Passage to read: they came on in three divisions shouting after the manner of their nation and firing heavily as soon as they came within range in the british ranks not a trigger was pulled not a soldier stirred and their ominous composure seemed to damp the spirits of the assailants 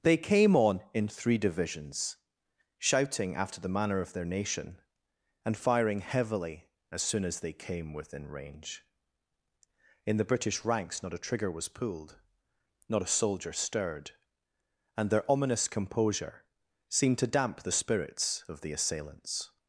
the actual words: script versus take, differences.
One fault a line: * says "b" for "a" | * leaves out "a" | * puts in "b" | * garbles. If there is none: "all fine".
all fine